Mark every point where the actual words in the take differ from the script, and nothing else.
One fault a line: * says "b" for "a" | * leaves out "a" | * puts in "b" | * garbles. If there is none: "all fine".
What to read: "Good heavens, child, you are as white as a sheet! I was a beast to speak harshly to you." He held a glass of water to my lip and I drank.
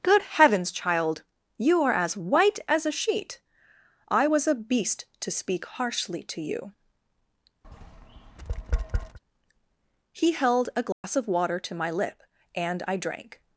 all fine